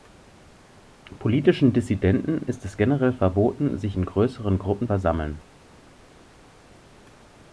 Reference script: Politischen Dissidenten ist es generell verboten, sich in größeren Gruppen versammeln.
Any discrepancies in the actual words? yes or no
no